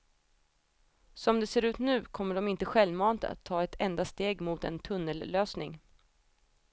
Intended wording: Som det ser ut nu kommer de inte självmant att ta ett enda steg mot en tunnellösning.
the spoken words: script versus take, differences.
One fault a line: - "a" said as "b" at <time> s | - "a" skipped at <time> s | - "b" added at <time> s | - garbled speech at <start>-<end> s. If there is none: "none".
none